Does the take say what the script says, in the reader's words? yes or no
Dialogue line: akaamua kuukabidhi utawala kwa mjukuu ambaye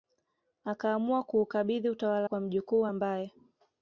yes